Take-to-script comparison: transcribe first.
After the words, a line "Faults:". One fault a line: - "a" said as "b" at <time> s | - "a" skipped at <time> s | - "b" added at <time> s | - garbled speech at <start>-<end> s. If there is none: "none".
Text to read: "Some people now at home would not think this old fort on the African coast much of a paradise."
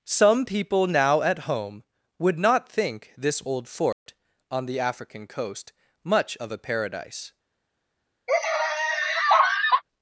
"Some people now at home would not think this old fort on the African coast much of a paradise."
Faults:
none